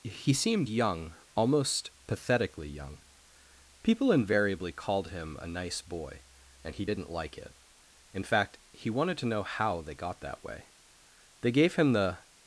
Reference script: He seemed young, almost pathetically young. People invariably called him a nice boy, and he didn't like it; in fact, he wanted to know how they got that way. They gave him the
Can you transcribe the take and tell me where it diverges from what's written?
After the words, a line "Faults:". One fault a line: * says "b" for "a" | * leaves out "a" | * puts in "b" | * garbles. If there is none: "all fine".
He seemed young, almost pathetically young. People invariably called him a nice boy, and he didn't like it; in fact, he wanted to know how they got that way. They gave him the
Faults:
all fine